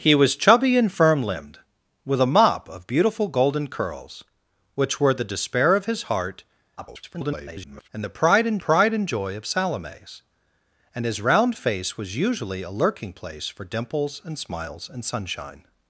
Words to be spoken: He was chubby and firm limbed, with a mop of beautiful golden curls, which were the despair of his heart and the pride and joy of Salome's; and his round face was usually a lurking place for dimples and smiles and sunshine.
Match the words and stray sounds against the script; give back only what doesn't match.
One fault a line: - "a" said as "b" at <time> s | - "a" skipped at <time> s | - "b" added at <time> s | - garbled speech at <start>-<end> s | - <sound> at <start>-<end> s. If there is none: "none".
- garbled speech at 6.8-7.9 s
- "pride and" added at 8.6 s